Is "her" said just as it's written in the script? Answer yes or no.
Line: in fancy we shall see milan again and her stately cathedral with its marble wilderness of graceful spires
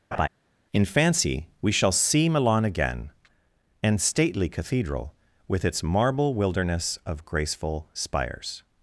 no